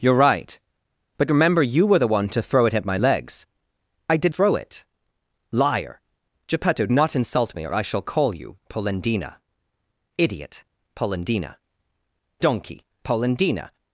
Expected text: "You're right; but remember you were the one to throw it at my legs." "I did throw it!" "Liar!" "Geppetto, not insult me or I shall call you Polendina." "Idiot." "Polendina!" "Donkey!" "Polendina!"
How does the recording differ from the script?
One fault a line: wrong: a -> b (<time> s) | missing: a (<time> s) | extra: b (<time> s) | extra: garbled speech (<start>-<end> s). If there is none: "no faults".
no faults